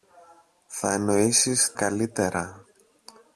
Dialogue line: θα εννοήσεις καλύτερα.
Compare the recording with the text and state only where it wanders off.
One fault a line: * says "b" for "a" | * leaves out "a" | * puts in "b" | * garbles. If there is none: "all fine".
all fine